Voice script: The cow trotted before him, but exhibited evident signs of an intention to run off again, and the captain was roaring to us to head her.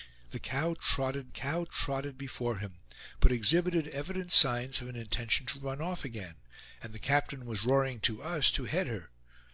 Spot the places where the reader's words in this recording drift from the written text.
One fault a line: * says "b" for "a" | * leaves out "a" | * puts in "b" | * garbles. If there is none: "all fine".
* puts in "cow trotted"